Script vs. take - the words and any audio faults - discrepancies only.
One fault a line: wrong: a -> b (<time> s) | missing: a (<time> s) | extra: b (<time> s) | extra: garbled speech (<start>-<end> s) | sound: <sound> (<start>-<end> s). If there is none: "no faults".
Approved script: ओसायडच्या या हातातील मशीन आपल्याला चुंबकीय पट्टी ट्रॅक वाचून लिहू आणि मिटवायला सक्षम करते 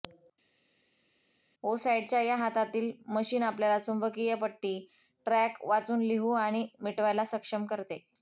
no faults